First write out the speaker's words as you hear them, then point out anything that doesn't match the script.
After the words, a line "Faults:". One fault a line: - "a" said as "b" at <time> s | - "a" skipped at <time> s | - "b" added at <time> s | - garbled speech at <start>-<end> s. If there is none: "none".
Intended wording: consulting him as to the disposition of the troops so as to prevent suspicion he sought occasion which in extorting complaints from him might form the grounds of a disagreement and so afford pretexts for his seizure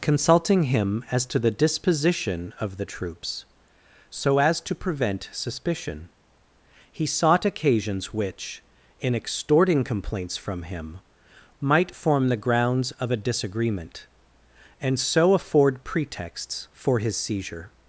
consulting him as to the disposition of the troops so as to prevent suspicion he sought occasions which in extorting complaints from him might form the grounds of a disagreement and so afford pretexts for his seizure
Faults:
- "occasion" said as "occasions" at 7.5 s